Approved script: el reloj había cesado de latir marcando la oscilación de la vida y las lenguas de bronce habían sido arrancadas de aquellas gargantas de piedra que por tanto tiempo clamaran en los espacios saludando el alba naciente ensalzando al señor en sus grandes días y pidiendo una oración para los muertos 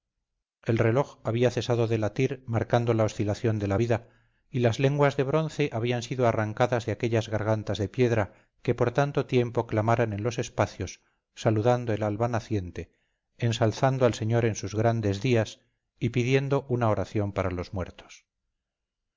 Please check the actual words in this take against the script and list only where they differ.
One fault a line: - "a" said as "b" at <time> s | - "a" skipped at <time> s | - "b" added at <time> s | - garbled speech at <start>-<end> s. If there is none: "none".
none